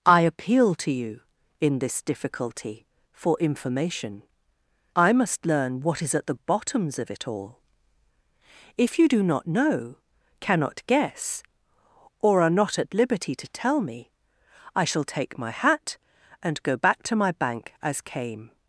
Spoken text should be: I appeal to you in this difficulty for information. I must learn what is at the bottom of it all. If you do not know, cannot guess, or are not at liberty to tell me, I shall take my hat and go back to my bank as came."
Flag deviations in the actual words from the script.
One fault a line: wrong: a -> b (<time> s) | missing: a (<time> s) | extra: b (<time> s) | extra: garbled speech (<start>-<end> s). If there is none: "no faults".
wrong: bottom -> bottoms (6.3 s)